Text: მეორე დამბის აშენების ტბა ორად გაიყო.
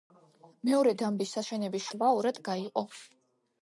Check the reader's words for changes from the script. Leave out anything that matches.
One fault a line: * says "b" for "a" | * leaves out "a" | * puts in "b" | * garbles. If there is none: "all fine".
all fine